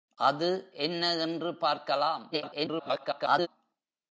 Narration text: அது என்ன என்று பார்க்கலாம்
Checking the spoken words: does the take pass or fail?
fail